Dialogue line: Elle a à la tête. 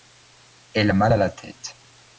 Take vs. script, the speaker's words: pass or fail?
fail